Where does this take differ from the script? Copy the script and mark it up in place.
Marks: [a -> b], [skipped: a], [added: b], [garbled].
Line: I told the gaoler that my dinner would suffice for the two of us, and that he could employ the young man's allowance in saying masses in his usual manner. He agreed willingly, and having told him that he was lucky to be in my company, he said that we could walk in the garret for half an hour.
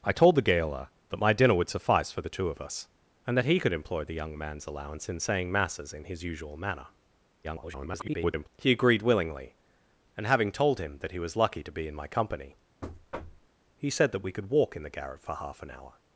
I told the gaoler that my dinner would suffice for the two of us, and that he could employ the young man's allowance in saying masses in his usual manner. [garbled] He agreed willingly, and having told him that he was lucky to be in my company, he said that we could walk in the garret for half an hour.